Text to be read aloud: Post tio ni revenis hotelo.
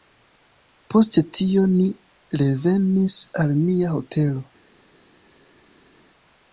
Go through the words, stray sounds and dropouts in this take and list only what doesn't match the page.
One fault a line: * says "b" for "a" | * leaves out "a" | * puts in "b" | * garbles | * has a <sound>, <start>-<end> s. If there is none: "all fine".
* puts in "al mia"